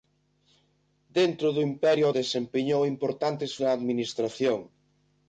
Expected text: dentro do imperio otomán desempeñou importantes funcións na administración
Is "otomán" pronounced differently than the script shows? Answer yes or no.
yes